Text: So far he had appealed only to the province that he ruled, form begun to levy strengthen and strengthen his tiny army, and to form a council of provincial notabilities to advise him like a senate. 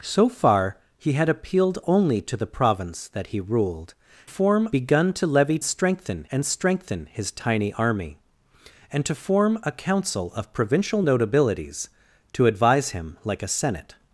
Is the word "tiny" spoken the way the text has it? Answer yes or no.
yes